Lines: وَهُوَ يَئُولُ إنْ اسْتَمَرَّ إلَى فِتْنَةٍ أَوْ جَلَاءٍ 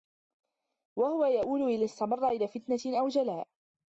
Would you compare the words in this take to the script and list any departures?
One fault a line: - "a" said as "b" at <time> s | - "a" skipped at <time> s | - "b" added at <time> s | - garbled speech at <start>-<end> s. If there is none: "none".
none